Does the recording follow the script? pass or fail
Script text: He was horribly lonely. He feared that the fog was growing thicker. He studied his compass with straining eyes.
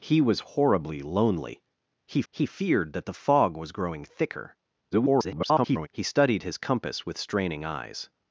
fail